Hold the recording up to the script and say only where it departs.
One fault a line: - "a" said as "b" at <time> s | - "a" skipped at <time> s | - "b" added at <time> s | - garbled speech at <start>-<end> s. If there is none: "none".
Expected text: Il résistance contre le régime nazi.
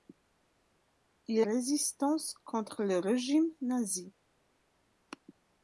none